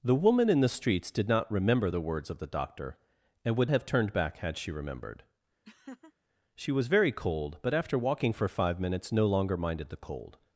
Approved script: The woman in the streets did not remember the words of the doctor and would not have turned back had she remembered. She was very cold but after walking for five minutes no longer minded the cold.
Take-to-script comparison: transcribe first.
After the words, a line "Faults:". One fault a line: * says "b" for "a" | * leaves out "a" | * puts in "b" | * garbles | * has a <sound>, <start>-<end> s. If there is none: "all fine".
The woman in the streets did not remember the words of the doctor and would have turned back had she remembered. She was very cold but after walking for five minutes no longer minded the cold.
Faults:
* leaves out "not"
* has a laugh, 5.6-6.1 s